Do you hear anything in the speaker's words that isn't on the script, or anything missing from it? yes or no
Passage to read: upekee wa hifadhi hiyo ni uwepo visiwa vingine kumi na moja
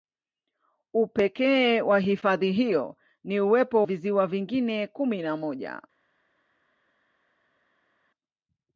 no